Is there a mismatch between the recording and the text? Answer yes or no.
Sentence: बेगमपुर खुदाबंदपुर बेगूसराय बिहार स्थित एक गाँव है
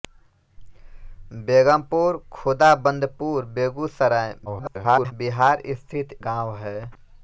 yes